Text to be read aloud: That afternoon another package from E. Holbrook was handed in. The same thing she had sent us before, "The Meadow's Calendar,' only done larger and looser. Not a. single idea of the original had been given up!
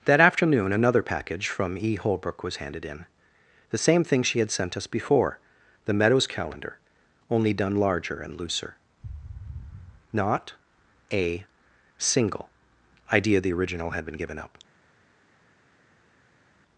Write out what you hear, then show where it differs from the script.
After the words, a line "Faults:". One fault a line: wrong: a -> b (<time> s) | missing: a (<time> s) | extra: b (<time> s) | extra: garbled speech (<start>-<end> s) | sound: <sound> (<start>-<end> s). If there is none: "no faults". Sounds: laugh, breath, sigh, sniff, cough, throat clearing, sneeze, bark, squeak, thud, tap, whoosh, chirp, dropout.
That afternoon another package from E. Holbrook was handed in. The same thing she had sent us before, "The Meadow's Calendar,' only done larger and looser. Not a. single idea the original had been given up!
Faults:
missing: of (13.4 s)